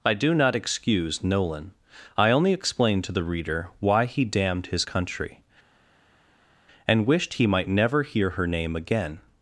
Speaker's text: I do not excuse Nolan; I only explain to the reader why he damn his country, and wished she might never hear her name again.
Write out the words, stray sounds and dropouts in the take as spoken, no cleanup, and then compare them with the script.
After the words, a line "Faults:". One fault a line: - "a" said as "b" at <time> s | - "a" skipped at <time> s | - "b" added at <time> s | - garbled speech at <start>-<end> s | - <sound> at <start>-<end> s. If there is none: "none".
I do not excuse Nolan; I only explain to the reader why he damned his country, and wished he might never hear her name again.
Faults:
- "damn" said as "damned" at 4.2 s
- "she" said as "he" at 7.4 s